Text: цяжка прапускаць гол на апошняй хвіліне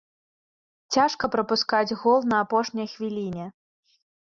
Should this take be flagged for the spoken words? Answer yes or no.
no